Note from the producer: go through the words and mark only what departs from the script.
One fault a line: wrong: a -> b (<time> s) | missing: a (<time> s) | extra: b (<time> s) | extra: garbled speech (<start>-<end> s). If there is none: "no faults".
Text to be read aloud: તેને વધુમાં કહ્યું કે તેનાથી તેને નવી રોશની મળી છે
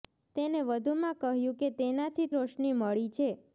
missing: તેને નવી (2.3 s)